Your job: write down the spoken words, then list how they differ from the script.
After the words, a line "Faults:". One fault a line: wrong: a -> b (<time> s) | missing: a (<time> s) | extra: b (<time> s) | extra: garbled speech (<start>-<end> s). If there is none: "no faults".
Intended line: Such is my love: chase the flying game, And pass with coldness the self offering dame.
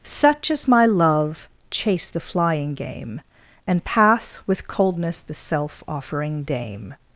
Such is my love: chase the flying game, And pass with coldness the self offering dame.
Faults:
no faults